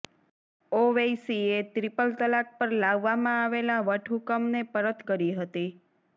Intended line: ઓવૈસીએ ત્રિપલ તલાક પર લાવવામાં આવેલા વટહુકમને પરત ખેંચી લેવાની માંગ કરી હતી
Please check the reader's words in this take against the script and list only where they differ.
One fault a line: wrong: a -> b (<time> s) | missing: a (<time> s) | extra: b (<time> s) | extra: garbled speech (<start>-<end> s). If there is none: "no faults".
missing: ખેંચી લેવાની માંગ (5.1 s)